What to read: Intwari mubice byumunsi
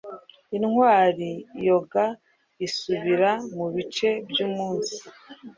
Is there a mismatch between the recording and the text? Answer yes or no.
yes